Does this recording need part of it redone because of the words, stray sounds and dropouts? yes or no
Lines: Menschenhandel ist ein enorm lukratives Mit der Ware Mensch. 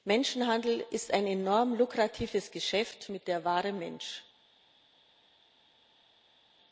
yes